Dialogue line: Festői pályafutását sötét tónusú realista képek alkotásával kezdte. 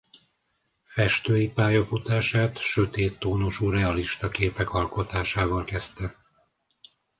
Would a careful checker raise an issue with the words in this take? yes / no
no